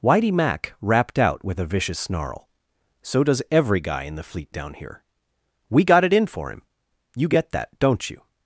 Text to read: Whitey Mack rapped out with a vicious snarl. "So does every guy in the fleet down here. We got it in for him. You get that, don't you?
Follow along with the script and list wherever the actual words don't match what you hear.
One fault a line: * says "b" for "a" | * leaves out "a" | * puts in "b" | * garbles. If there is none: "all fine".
all fine